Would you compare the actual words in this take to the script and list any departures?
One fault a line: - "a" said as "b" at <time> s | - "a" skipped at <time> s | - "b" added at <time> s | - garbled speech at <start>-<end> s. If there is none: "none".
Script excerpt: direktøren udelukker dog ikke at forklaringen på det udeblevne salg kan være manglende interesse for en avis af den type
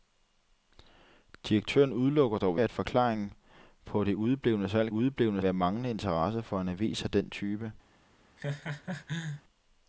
- "ikke" skipped at 2.6 s
- "kan" said as "udeblevne" at 4.9 s